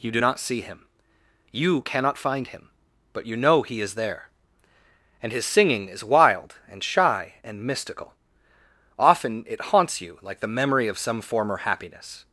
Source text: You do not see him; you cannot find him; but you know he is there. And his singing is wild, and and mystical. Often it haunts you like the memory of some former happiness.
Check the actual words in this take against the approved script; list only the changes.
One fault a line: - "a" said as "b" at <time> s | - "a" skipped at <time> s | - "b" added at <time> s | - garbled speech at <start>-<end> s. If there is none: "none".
- "shy" added at 6.8 s